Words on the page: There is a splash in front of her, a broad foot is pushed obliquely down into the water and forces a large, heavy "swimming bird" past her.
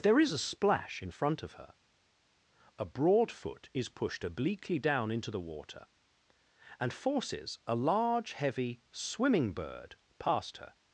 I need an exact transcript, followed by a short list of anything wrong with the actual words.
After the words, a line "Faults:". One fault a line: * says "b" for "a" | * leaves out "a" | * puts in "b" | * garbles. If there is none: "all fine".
There is a splash in front of her, a broad foot is pushed obliquely down into the water and forces a large, heavy "swimming bird" past her.
Faults:
all fine